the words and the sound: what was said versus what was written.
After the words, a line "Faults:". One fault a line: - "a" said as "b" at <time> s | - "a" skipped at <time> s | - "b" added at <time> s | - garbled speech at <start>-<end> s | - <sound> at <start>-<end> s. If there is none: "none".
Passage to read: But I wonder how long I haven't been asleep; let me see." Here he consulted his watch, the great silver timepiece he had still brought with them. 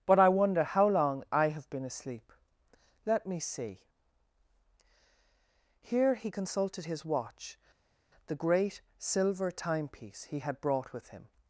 But I wonder how long I have been asleep; let me see." Here he consulted his watch, the great silver timepiece he had brought with him.
Faults:
- "haven't" said as "have" at 1.5 s
- "still" skipped at 10.6 s
- "them" said as "him" at 11.1 s